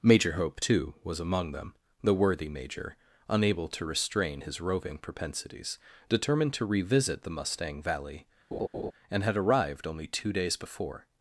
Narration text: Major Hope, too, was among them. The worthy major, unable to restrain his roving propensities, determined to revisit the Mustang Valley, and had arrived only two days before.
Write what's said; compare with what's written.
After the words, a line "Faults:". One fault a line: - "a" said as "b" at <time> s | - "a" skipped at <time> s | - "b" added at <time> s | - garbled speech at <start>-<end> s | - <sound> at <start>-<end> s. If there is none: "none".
Major Hope, too, was among them. The worthy major, unable to restrain his roving propensities, determined to revisit the Mustang Valley, and had arrived only two days before.
Faults:
- laugh at 8.5-8.9 s